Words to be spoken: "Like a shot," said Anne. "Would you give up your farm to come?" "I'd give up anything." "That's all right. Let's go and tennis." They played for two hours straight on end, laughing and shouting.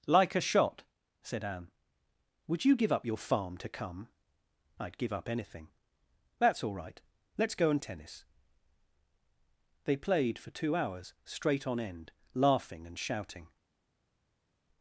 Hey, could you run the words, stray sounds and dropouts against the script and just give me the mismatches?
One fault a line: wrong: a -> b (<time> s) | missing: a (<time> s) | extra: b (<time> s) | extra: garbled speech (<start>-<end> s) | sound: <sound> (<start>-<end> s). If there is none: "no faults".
no faults